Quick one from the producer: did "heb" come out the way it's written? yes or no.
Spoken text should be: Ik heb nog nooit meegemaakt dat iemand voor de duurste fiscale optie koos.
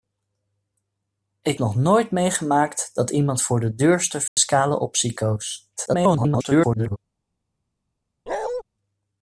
no